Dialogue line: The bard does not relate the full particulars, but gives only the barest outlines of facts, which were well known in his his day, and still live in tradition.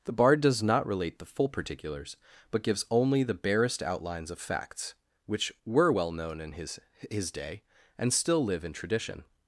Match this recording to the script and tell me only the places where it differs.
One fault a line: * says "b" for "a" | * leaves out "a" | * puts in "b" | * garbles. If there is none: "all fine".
all fine